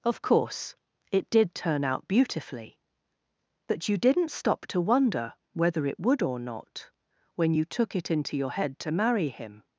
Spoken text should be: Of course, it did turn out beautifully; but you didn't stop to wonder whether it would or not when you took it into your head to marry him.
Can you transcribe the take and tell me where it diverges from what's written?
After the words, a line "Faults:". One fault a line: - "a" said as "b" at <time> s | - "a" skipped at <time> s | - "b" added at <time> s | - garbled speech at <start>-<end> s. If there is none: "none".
Of course, it did turn out beautifully; but you didn't stop to wonder whether it would or not when you took it into your head to marry him.
Faults:
none